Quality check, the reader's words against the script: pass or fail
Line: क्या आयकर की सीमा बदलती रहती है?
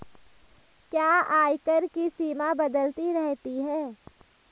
pass